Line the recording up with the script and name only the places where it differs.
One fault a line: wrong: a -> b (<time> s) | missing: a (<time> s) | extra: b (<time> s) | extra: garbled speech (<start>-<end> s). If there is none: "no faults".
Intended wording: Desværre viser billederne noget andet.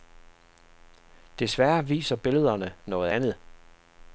no faults